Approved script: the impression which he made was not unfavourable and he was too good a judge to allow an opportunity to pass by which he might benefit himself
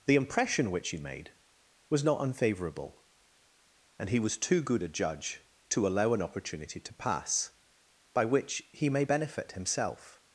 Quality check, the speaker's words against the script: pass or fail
fail